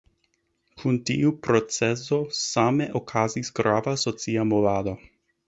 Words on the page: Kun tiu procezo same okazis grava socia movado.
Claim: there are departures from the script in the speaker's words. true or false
false